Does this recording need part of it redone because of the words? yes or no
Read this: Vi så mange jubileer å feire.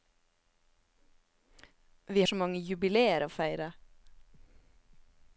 no